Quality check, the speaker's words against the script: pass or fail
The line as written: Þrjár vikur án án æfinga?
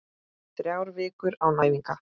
fail